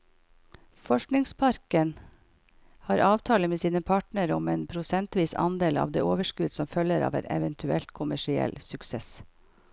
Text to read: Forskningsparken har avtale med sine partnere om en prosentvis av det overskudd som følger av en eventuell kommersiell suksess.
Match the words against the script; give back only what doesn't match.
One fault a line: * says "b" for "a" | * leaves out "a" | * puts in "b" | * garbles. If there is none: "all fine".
* puts in "andel"